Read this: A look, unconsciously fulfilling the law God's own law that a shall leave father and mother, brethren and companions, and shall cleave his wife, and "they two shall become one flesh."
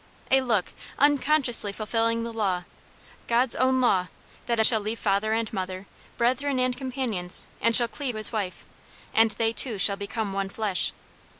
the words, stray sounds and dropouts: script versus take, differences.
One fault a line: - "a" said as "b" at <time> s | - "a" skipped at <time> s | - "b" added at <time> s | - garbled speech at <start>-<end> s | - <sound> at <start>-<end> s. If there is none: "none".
none